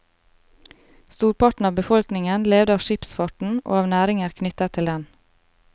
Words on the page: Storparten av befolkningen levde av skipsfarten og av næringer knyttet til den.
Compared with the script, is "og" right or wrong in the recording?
right